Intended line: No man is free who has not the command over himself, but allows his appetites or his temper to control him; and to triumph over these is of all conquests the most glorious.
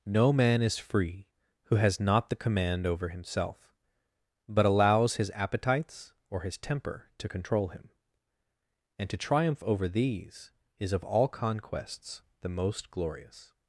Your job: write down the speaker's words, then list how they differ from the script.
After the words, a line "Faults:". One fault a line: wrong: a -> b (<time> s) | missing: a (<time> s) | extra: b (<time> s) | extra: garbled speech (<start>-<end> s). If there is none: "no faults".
No man is free who has not the command over himself, but allows his appetites or his temper to control him; and to triumph over these is of all conquests the most glorious.
Faults:
no faults